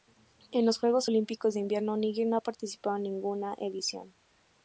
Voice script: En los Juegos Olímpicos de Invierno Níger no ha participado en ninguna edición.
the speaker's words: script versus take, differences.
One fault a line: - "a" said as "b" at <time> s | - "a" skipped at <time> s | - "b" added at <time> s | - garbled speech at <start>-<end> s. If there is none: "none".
none